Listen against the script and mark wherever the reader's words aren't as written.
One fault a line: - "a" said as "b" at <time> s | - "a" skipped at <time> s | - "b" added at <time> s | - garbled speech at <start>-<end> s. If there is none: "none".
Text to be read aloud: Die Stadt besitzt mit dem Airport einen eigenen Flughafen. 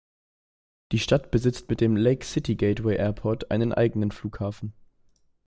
- "Lake City Gateway" added at 1.9 s